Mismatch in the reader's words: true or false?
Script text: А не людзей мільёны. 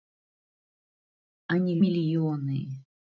true